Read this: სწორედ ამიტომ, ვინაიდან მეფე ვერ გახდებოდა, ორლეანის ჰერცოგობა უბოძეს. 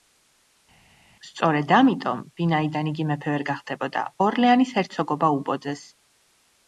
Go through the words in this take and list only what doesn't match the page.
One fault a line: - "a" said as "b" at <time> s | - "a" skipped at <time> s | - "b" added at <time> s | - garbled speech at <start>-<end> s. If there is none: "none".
- "იგი" added at 2.9 s